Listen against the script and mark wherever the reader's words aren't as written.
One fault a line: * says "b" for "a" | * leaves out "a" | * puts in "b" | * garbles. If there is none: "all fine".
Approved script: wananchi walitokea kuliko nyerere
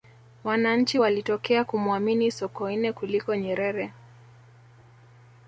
* puts in "kumuamini sokoine"